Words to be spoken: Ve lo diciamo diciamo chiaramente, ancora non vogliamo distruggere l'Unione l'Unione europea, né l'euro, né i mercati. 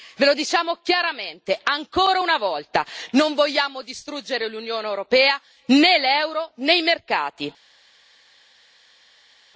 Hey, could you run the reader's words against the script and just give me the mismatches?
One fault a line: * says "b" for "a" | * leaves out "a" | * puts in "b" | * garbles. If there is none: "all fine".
* leaves out "diciamo"
* puts in "una volta"
* leaves out "l'Unione"